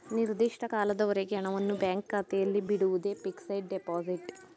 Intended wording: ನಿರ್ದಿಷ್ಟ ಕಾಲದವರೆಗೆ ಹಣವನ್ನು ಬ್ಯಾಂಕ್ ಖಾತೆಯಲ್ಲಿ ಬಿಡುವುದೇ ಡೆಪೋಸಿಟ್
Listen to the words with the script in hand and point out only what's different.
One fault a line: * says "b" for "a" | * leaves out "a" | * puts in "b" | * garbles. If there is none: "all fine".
* puts in "ಫಿಕ್ಸಡ್"